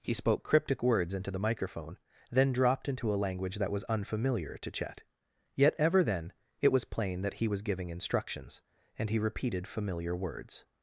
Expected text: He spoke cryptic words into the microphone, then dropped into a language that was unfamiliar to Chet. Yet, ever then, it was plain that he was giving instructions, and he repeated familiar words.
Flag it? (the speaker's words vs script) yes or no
no